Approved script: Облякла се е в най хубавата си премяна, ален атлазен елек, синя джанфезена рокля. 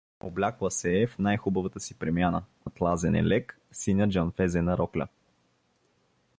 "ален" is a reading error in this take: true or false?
true